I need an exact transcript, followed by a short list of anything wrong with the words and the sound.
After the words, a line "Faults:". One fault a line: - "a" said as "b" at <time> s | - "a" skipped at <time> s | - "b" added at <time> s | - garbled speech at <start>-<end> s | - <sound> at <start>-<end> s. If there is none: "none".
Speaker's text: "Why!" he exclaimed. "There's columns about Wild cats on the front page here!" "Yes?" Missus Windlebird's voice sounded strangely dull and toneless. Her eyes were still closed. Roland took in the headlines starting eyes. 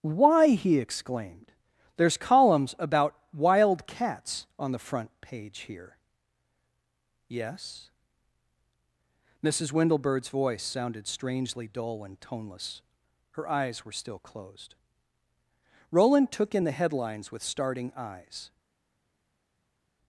"Why!" he exclaimed. "There's columns about Wild cats on the front page here!" "Yes?" Missus Windlebird's voice sounded strangely dull and toneless. Her eyes were still closed. Roland took in the headlines with starting eyes.
Faults:
- "with" added at 17.3 s